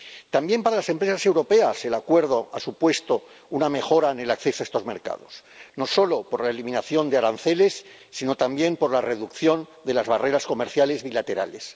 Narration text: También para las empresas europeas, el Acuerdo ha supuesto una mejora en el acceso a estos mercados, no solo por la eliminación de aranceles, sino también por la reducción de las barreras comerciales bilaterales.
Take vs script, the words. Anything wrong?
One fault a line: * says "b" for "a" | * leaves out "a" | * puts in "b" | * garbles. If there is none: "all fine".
all fine